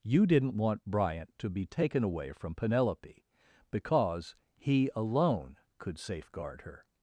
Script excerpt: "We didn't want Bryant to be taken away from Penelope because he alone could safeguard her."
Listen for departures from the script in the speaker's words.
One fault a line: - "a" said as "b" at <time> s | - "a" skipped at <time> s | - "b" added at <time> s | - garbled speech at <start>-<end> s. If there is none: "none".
- "We" said as "You" at 0.0 s